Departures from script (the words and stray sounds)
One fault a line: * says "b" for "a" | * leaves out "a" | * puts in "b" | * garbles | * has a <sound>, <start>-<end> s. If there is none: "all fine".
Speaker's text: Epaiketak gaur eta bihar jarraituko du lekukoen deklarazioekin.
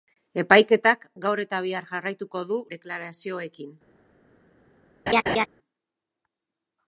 * leaves out "lekukoen"
* has a laugh, 5.1-5.5 s